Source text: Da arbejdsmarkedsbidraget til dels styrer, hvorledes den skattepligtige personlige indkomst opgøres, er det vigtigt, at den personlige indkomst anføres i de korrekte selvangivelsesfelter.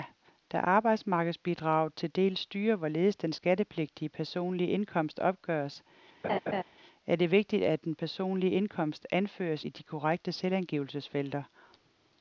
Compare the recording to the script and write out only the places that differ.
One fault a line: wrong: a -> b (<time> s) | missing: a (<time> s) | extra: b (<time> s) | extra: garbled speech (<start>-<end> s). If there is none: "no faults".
no faults